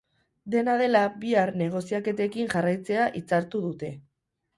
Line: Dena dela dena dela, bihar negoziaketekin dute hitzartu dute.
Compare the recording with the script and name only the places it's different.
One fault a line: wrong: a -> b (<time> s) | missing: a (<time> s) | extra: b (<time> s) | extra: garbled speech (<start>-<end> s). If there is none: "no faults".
missing: dena dela (1.0 s)
wrong: dute -> jarraitzea (2.5 s)